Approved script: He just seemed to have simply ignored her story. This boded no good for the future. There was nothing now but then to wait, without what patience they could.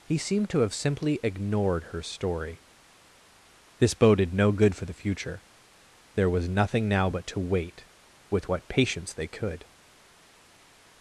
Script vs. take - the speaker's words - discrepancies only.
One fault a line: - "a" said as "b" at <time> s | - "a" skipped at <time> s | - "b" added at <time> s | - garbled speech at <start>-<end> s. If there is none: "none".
- "just" skipped at 0.2 s
- "then" skipped at 7.3 s
- "without" said as "with" at 8.3 s